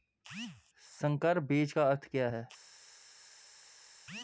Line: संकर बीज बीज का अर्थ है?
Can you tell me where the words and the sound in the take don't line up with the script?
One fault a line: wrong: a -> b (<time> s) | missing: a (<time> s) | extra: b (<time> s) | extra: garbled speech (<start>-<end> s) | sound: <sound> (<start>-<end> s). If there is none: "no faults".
missing: बीज (1.7 s)
extra: क्या (2.1 s)